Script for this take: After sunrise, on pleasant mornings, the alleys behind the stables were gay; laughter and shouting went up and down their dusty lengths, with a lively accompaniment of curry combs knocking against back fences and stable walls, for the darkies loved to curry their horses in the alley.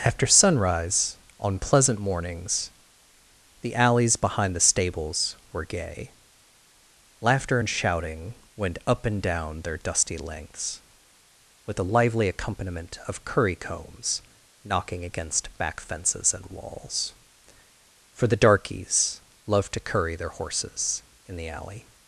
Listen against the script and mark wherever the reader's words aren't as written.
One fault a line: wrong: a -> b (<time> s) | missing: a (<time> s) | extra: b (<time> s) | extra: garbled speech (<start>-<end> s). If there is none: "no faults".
missing: stable (16.4 s)